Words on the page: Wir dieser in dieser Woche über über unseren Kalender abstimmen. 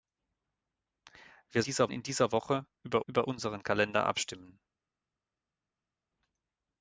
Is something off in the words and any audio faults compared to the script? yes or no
no